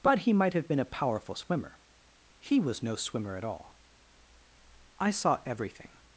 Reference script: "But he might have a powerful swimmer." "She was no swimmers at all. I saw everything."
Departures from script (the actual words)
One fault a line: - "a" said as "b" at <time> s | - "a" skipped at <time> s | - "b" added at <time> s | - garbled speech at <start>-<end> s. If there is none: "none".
- "been" added at 0.7 s
- "She" said as "He" at 2.4 s
- "swimmers" said as "swimmer" at 3.0 s